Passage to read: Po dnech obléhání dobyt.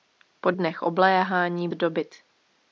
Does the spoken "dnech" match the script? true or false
true